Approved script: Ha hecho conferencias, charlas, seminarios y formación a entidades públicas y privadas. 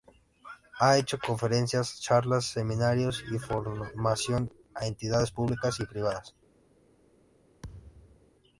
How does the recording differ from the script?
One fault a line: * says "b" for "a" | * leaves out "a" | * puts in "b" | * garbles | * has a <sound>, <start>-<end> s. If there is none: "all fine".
* has a thud, 7.6-8.3 s